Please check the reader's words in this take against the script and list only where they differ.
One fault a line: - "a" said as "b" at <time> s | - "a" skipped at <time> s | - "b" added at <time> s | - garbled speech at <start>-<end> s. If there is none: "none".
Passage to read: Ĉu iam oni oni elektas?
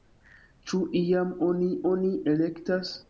none